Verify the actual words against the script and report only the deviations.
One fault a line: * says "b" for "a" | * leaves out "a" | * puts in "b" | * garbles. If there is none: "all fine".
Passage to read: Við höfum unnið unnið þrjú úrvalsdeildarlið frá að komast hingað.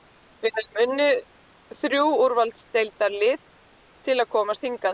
* leaves out "unnið"
* says "til" for "frá"